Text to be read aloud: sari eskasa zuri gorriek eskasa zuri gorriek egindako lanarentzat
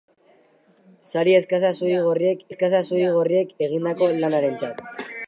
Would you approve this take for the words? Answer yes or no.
yes